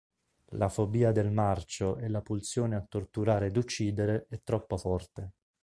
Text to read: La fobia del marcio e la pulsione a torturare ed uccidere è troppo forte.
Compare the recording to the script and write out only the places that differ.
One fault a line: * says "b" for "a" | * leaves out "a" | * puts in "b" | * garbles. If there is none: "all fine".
all fine